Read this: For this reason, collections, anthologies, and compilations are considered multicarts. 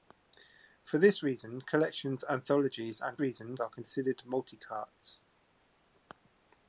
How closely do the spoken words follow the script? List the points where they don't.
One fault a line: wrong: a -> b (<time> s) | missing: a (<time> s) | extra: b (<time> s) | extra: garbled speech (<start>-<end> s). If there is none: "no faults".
wrong: compilations -> reason (3.2 s)